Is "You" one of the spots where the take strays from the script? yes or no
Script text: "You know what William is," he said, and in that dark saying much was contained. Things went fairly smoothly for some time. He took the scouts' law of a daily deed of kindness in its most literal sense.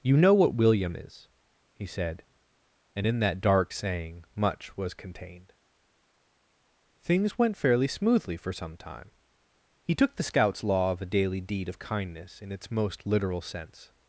no